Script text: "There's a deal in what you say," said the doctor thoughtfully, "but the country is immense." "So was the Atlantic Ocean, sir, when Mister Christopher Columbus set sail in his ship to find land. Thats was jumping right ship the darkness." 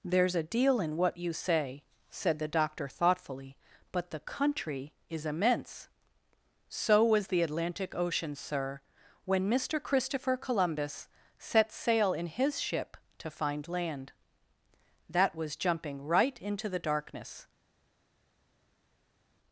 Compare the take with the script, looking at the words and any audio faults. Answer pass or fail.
fail